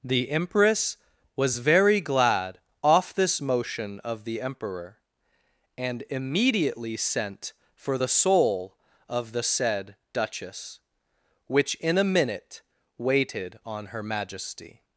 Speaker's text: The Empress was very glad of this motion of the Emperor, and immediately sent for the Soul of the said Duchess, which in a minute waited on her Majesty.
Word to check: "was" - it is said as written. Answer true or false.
true